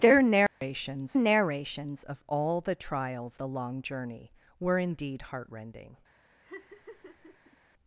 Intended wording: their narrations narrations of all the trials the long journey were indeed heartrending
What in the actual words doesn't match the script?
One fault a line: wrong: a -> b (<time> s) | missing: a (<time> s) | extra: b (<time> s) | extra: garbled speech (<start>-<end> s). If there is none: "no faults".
no faults